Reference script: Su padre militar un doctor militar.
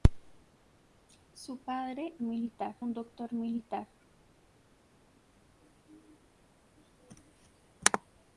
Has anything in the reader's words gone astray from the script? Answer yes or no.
no